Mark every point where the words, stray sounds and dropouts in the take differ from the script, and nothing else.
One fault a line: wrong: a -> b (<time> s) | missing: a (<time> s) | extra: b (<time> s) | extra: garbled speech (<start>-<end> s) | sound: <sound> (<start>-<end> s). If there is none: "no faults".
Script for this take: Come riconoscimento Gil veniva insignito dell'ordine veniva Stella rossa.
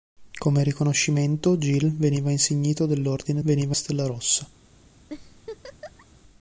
sound: laugh (5.1-6.1 s)